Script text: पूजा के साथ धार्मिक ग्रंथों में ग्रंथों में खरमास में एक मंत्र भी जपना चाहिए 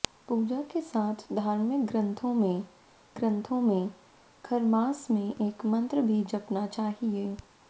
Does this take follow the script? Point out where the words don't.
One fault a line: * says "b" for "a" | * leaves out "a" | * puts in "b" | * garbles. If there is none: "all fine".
all fine